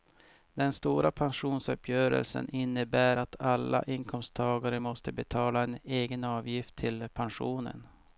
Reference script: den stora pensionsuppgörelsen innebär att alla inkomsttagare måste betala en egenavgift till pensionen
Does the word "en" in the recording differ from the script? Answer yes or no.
no